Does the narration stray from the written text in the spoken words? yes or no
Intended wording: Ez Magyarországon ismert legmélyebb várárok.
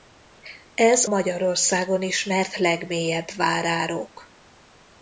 no